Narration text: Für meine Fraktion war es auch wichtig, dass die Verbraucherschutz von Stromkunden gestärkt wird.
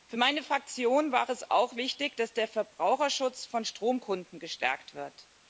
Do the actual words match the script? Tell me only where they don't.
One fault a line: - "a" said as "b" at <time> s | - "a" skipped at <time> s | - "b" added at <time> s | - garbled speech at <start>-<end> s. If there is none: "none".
- "die" said as "der" at 2.3 s